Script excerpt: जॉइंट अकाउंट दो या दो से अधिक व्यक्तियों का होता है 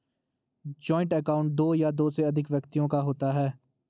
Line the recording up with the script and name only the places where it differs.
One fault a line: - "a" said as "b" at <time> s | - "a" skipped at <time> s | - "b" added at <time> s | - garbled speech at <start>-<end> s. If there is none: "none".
none